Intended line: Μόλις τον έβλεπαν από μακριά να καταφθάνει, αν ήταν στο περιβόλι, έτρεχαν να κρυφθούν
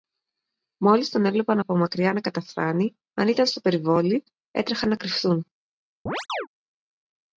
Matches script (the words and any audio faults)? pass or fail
fail